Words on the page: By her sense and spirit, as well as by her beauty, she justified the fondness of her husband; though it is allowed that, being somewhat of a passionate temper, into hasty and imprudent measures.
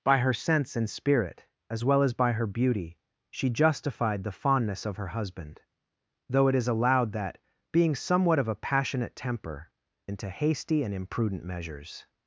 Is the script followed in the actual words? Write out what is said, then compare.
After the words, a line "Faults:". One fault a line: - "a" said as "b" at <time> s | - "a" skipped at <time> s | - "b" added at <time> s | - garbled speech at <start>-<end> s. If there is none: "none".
By her sense and spirit, as well as by her beauty, she justified the fondness of her husband; though it is allowed that, being somewhat of a passionate temper, into hasty and imprudent measures.
Faults:
none